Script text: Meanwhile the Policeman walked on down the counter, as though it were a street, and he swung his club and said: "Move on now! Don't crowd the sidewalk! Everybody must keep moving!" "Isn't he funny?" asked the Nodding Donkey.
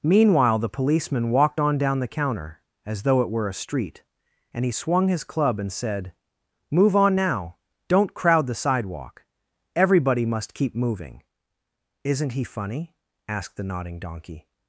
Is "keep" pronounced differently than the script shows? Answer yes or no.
no